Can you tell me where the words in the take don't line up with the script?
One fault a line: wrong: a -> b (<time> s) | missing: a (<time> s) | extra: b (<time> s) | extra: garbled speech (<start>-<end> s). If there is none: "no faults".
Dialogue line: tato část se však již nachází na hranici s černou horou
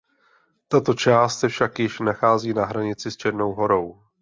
no faults